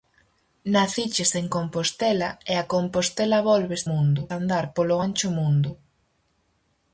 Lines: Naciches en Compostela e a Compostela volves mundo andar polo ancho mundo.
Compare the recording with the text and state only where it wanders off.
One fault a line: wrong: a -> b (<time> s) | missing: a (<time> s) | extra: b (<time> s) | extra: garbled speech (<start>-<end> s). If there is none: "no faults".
no faults